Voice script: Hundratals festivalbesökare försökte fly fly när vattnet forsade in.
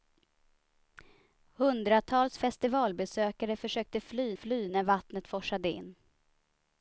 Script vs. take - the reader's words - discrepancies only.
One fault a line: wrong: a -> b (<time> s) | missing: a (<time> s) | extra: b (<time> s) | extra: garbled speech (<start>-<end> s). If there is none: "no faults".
no faults